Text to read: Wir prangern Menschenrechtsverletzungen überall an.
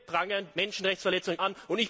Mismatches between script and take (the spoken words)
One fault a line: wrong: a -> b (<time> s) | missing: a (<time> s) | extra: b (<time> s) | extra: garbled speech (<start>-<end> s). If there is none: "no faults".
missing: überall (1.4 s)